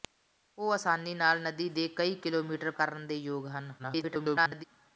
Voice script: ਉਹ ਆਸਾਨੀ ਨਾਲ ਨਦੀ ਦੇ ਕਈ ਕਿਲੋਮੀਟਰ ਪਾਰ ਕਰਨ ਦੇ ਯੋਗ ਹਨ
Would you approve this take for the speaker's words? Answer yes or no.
no